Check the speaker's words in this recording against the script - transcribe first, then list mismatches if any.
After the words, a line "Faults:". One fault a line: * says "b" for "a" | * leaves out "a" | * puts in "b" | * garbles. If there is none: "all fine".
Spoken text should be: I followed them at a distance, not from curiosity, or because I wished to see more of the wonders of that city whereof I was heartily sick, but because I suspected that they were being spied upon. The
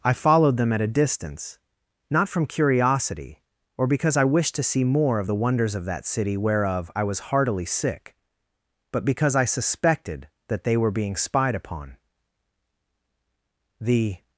I followed them at a distance, not from curiosity, or because I wished to see more of the wonders of that city whereof I was heartily sick, but because I suspected that they were being spied upon. The
Faults:
all fine